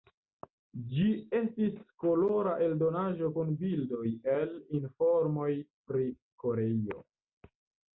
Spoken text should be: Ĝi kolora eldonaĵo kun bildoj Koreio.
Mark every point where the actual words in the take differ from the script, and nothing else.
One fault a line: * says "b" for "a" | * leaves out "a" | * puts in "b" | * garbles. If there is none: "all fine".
* puts in "estis"
* puts in "el informoj pri"